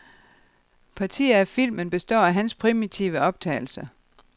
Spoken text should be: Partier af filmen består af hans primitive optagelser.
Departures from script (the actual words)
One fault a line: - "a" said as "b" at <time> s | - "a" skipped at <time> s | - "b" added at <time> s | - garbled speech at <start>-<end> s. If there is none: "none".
none